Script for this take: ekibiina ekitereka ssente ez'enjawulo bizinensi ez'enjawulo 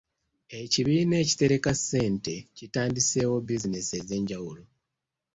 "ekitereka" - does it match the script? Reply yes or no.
yes